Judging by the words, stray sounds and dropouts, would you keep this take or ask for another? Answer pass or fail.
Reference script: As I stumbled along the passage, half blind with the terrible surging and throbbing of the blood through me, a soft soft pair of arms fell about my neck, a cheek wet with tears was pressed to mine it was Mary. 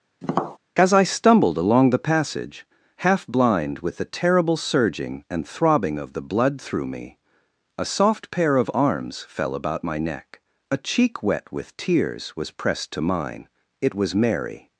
fail